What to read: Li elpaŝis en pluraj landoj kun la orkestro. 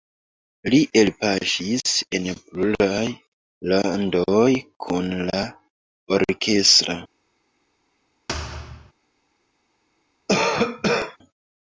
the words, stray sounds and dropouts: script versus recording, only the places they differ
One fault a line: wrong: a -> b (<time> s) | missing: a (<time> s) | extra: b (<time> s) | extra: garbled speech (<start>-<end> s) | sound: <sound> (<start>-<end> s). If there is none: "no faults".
sound: thud (8.3-8.9 s)
sound: cough (10.3-11.2 s)